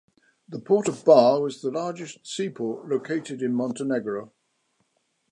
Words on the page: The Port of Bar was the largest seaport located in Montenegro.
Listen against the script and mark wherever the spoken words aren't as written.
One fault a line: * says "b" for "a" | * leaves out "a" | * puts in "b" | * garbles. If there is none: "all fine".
all fine